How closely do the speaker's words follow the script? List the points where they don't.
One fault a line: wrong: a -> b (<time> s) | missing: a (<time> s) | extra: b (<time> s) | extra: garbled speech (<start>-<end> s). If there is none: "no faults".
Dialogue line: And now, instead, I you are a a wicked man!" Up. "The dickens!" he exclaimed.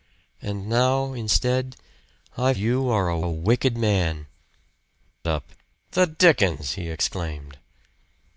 no faults